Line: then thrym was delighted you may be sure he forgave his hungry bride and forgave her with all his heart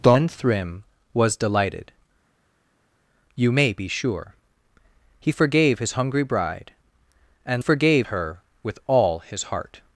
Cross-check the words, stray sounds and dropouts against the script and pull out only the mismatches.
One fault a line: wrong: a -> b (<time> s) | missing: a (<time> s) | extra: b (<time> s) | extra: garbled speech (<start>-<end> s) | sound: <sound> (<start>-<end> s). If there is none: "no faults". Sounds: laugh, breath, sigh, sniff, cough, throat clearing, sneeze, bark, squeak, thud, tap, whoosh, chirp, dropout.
no faults